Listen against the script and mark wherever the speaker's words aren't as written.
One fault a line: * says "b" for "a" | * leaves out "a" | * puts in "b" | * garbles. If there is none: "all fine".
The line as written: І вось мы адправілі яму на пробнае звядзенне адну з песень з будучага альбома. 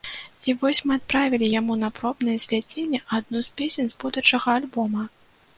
all fine